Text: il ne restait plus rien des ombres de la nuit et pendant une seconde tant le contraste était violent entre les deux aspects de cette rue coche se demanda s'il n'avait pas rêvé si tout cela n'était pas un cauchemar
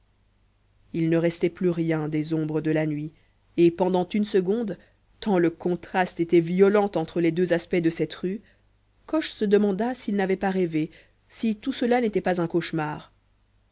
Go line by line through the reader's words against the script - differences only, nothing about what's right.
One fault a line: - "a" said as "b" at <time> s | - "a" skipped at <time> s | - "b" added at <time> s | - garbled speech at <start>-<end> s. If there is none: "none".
none